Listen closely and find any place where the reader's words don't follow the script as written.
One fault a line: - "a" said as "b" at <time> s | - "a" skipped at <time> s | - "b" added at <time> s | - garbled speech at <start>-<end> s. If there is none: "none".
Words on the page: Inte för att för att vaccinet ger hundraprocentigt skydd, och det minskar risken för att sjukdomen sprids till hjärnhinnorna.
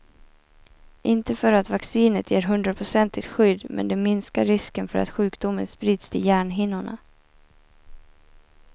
- "för att" skipped at 1.7 s
- "och" said as "men" at 3.7 s